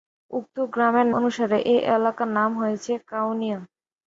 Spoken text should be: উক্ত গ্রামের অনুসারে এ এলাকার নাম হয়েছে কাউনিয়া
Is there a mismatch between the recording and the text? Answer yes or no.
no